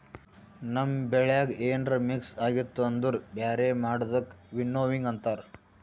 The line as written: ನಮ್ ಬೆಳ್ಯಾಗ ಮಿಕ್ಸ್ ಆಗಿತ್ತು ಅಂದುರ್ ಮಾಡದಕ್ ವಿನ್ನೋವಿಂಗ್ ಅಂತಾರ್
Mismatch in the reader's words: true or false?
true